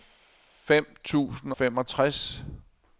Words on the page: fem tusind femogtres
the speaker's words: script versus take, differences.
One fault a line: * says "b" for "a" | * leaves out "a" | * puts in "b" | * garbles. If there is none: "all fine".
all fine